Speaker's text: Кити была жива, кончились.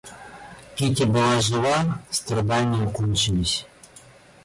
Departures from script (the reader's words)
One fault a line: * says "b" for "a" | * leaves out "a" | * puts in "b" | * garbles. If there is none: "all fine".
* puts in "страдания"